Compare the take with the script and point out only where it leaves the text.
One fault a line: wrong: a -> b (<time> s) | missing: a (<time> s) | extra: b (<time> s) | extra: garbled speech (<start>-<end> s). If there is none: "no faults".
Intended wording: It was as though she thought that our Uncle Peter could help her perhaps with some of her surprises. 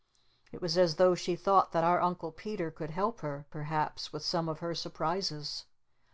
no faults